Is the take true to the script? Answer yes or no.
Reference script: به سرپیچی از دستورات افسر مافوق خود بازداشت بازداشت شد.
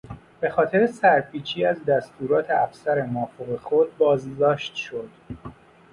no